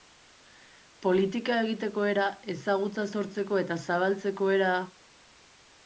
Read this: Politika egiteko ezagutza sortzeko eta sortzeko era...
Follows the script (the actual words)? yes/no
no